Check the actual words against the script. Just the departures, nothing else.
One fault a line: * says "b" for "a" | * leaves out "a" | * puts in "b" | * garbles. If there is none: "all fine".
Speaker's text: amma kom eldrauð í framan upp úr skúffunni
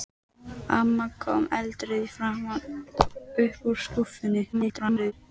* garbles